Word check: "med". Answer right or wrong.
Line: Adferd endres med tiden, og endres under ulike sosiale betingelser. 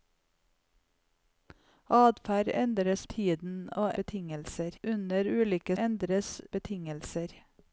wrong